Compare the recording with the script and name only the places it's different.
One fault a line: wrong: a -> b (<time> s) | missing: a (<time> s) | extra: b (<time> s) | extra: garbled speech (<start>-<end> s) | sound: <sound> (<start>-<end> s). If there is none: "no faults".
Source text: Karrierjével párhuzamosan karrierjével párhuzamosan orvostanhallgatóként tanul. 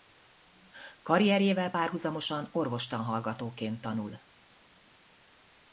missing: karrierjével párhuzamosan (2.5 s)